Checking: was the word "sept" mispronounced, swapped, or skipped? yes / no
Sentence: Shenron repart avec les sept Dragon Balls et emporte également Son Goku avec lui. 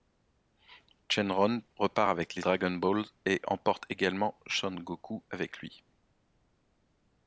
yes